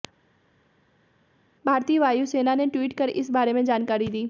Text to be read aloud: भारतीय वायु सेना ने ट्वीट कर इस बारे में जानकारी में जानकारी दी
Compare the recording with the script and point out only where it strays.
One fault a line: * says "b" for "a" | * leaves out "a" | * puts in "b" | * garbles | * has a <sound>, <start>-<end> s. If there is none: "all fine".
* leaves out "में जानकारी"